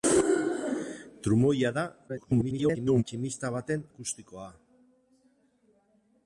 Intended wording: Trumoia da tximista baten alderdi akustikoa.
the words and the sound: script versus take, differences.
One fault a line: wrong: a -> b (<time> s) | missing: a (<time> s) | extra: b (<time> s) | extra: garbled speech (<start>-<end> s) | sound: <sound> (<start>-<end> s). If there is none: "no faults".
extra: garbled speech (2.1-3.0 s)
missing: alderdi (3.9 s)